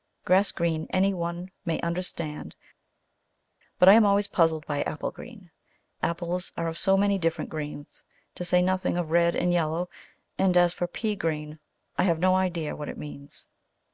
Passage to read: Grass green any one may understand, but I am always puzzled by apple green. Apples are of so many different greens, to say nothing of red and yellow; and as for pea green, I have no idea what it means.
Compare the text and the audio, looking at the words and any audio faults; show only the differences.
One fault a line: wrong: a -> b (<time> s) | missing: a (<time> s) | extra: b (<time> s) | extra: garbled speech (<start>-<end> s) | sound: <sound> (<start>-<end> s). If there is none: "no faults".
no faults